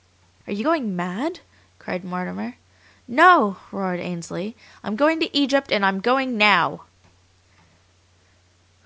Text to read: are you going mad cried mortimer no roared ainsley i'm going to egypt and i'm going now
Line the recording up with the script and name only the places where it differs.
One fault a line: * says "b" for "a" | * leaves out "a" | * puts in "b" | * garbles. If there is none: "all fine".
all fine